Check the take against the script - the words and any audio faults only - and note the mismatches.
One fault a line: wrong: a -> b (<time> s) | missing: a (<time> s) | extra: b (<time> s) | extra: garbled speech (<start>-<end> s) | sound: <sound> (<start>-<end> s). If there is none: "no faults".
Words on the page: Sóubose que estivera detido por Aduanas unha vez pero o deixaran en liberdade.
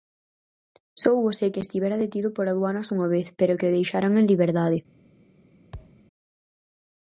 extra: que (3.6 s)
sound: thud (5.7-6.0 s)